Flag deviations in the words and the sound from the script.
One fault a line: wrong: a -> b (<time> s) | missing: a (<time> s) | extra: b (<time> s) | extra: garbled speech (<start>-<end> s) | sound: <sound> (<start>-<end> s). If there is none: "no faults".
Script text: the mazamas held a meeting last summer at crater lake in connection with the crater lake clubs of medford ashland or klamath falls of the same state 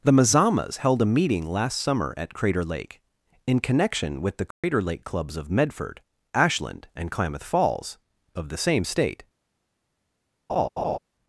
sound: dropout (4.5-4.6 s)
wrong: or -> and (7.0 s)
sound: laugh (10.5-11.0 s)